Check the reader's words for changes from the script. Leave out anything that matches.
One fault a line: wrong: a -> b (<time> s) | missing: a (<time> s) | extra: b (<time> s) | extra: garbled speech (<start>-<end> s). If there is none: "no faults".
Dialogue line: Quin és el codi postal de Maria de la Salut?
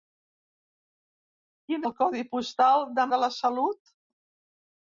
missing: és (1.9 s)
missing: Maria (3.1 s)